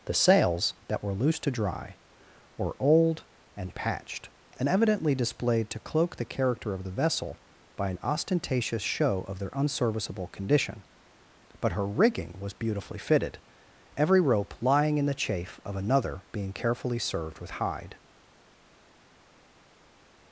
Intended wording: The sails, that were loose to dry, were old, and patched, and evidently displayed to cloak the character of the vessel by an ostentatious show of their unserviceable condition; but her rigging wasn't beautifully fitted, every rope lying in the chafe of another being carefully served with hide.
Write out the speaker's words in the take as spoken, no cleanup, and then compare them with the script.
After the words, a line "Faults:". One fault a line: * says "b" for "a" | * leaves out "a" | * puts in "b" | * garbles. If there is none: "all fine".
The sails, that were loose to dry, were old, and patched, and evidently displayed to cloak the character of the vessel by an ostentatious show of their unserviceable condition; but her rigging was beautifully fitted, every rope lying in the chafe of another being carefully served with hide.
Faults:
* says "was" for "wasn't"